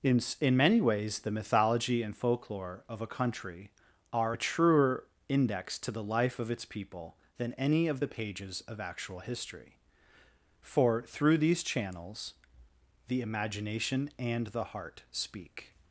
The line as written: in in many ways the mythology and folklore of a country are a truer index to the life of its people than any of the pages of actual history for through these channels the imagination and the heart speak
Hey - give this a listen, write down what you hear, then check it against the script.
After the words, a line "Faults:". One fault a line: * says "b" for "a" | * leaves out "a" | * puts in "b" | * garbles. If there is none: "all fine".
in in many ways the mythology and folklore of a country are a truer index to the life of its people than any of the pages of actual history for through these channels the imagination and the heart speak
Faults:
all fine